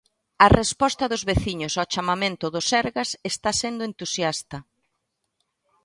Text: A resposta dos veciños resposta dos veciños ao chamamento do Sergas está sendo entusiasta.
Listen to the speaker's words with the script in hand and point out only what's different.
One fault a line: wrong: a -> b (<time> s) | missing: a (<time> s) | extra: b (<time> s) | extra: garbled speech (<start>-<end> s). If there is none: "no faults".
missing: resposta dos veciños (1.7 s)